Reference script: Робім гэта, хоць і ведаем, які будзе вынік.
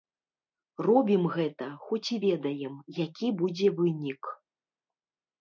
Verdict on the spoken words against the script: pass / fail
pass